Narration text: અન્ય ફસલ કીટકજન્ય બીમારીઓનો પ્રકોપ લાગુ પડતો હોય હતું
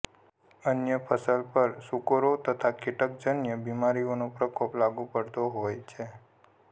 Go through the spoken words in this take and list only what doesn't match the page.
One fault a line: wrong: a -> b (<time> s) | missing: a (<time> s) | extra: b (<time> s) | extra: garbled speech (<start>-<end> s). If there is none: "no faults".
extra: પર સૂકરો તથા (1.5 s)
wrong: હતું -> છે (5.9 s)